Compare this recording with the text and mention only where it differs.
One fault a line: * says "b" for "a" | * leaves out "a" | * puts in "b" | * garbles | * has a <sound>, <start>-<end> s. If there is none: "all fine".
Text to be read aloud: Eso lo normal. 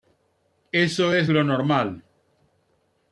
* puts in "es"